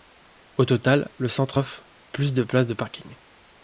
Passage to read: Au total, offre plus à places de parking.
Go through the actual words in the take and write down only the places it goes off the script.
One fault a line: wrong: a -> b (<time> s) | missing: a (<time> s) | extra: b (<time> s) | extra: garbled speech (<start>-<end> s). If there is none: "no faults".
extra: le centre (1.2 s)
wrong: à -> de (2.3 s)